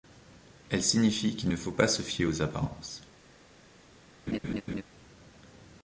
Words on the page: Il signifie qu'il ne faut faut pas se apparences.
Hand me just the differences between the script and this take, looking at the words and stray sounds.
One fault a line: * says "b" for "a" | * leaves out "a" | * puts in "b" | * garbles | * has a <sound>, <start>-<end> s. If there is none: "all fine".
* says "Elle" for "Il"
* leaves out "faut"
* puts in "fier aux"
* has a laugh, 4.3-4.8 s